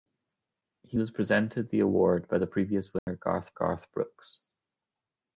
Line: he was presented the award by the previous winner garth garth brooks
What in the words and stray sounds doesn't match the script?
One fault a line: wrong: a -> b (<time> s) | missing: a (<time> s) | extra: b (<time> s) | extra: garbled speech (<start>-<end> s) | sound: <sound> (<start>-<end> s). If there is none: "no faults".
sound: dropout (3.0-3.1 s)